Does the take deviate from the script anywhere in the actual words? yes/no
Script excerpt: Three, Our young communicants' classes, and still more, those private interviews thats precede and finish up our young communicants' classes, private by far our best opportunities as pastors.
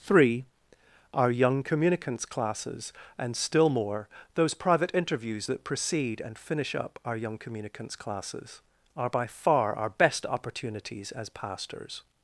yes